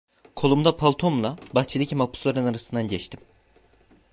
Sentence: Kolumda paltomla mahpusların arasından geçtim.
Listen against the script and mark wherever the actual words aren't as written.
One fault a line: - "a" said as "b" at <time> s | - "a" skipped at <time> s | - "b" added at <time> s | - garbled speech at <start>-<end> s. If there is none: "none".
- "bahçedeki" added at 1.6 s